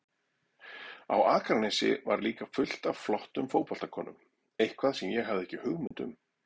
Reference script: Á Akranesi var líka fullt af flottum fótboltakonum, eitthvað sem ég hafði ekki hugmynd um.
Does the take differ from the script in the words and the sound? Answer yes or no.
yes